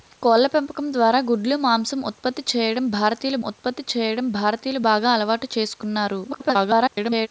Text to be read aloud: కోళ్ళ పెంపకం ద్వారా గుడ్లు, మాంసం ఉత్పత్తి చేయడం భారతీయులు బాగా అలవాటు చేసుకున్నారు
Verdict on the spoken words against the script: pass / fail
fail